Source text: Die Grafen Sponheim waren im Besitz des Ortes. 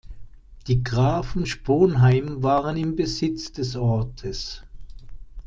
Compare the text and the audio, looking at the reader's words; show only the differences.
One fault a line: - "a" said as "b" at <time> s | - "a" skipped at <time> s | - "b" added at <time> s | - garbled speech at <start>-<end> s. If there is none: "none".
none